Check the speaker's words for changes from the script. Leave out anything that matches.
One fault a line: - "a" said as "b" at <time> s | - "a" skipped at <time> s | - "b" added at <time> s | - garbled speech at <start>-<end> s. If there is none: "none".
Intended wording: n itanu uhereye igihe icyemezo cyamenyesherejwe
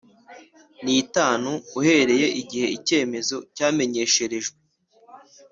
none